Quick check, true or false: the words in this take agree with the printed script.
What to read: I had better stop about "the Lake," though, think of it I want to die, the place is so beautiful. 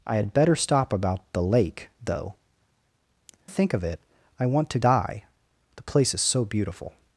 true